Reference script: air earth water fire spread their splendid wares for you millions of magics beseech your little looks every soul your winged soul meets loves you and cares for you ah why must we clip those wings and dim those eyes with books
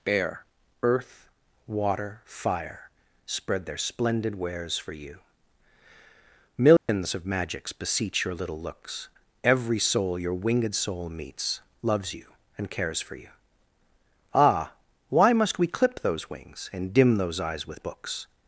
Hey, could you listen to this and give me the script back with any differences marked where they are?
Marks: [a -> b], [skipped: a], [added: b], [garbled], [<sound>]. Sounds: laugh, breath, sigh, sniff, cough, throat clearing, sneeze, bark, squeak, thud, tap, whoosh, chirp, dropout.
[air -> bear] earth water fire spread their splendid wares for you millions [dropout] of magics beseech your little looks every soul your winged soul meets loves you and cares for you ah why must we clip those wings and dim those eyes with books